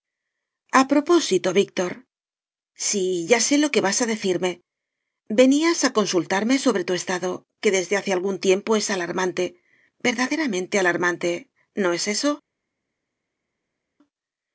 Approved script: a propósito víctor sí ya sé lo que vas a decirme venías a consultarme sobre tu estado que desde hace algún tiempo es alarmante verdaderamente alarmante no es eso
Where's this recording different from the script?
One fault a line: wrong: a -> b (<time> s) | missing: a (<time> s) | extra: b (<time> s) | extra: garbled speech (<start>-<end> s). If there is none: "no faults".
no faults